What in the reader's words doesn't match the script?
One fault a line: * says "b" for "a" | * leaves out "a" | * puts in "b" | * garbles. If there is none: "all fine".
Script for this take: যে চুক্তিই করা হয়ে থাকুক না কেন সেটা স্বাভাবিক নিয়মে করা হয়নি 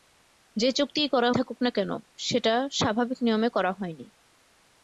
* leaves out "হয়ে"